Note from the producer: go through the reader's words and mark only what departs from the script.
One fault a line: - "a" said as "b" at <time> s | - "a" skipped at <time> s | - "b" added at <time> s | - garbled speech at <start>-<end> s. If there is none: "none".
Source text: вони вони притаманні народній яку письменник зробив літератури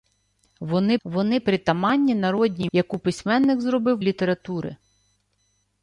none